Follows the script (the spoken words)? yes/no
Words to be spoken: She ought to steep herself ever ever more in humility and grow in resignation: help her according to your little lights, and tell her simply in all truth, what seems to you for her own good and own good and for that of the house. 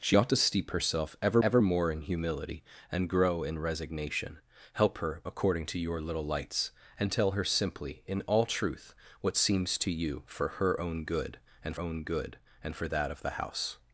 yes